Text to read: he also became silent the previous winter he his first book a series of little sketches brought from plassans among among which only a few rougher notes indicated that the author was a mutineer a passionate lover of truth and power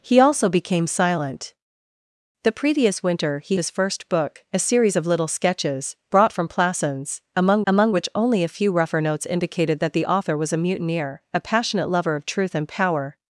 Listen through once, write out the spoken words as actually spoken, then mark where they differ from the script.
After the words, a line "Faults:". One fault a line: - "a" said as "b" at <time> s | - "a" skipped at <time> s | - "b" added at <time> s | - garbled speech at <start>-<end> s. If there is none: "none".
he also became silent the previous winter he his first book a series of little sketches brought from plassans among among which only a few rougher notes indicated that the author was a mutineer a passionate lover of truth and power
Faults:
none